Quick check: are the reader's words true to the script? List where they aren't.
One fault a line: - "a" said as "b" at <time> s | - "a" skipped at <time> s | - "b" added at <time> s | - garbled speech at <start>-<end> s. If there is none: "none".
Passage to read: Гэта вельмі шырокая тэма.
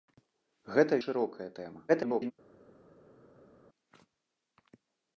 - "вельмі" skipped at 0.9 s
- garbled speech at 1.9-2.3 s